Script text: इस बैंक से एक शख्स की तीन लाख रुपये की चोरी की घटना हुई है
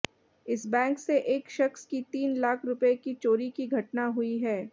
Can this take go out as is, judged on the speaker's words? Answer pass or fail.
pass